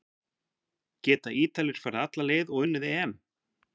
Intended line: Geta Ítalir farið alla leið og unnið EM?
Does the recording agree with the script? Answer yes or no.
yes